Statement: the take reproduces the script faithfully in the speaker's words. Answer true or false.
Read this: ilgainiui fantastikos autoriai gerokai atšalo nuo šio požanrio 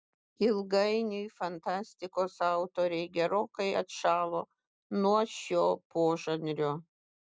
true